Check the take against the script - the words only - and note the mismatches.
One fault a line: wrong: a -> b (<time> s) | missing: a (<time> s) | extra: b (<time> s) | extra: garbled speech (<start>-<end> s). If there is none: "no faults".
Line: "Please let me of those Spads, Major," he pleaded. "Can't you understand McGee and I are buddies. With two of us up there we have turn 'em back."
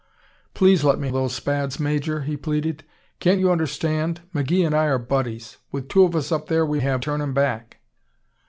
no faults